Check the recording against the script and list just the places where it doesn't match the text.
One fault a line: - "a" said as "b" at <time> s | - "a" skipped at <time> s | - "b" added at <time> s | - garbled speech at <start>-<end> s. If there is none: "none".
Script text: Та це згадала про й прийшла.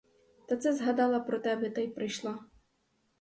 - "тебе та" added at 1.4 s